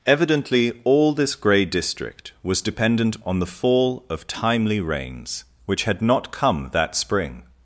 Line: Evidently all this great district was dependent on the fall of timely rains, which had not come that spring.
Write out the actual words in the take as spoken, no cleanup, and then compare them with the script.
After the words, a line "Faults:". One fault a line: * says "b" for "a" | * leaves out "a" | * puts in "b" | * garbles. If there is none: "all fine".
Evidently all this grey district was dependent on the fall of timely rains, which had not come that spring.
Faults:
* says "grey" for "great"